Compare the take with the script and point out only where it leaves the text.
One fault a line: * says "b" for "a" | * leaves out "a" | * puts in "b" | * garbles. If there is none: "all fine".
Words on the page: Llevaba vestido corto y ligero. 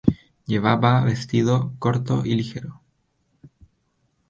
all fine